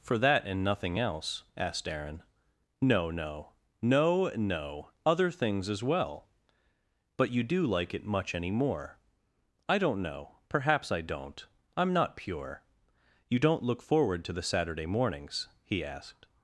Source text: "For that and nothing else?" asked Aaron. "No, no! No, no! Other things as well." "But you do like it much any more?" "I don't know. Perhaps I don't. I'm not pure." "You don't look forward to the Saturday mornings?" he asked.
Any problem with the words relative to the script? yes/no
no